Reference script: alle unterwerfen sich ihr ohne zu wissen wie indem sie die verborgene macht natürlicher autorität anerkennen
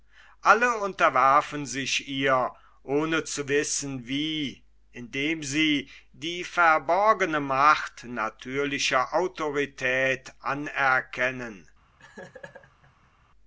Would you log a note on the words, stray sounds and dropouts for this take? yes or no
yes